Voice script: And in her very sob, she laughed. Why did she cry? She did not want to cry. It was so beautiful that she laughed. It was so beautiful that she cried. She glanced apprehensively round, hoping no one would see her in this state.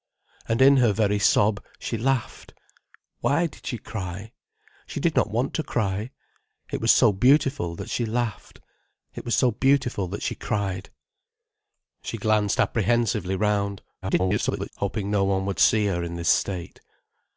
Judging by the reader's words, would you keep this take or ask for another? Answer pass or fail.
fail